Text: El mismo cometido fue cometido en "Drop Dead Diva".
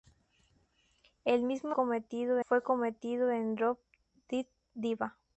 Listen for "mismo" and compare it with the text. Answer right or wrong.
right